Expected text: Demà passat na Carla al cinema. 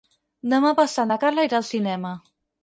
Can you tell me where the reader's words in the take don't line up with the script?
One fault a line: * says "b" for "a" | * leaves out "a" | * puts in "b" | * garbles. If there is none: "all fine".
* puts in "irà"